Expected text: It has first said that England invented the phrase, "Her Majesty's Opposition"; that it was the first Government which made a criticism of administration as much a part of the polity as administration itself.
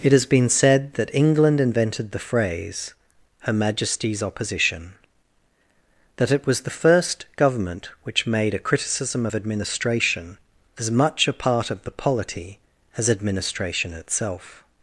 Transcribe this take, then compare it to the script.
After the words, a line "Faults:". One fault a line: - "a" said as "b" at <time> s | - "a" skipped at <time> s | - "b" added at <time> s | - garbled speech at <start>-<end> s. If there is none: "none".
It has been said that England invented the phrase, "Her Majesty's Opposition"; that it was the first Government which made a criticism of administration as much a part of the polity as administration itself.
Faults:
- "first" said as "been" at 0.2 s